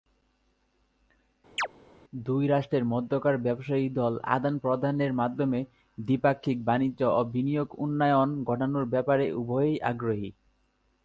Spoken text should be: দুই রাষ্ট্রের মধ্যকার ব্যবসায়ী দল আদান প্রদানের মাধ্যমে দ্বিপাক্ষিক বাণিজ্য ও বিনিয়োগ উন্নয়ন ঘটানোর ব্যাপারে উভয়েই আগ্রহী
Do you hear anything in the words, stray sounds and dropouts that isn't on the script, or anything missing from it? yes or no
yes